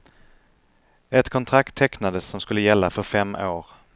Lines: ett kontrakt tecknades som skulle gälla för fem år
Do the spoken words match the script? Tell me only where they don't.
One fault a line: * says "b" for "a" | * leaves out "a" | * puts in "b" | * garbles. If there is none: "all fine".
all fine